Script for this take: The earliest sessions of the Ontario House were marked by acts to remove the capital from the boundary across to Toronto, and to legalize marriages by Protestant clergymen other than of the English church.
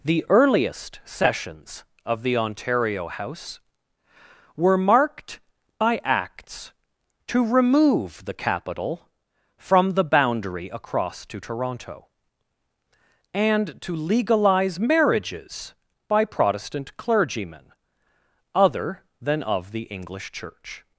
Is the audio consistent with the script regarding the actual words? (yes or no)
yes